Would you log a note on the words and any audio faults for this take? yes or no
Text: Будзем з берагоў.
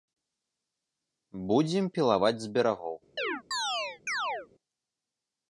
yes